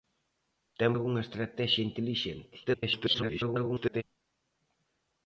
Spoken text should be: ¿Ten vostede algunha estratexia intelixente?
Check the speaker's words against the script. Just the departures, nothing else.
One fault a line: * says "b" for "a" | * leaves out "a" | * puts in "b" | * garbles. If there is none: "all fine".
* leaves out "vostede"
* garbles